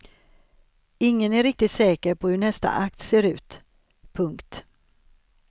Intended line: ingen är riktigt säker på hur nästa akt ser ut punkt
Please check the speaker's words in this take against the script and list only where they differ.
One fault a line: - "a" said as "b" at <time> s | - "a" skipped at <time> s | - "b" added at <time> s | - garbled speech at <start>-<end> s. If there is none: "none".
none